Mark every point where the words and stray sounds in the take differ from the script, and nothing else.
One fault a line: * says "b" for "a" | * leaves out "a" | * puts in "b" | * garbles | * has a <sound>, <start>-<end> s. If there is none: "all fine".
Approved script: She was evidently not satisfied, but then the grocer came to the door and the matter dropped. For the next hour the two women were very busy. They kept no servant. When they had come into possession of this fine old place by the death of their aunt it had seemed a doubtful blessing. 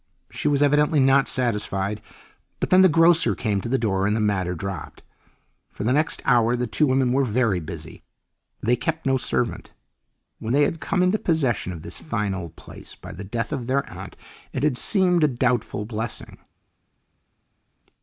all fine